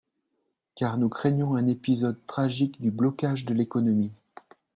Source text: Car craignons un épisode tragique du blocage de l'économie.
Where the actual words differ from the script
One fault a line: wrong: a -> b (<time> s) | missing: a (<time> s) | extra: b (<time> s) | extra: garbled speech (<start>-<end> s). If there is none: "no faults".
extra: nous (1.0 s)